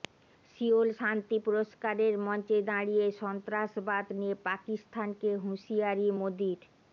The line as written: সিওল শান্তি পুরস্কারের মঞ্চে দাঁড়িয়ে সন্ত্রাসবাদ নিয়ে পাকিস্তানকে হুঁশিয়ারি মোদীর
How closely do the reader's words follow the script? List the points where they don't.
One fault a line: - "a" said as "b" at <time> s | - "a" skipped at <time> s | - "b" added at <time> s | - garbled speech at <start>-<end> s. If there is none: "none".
none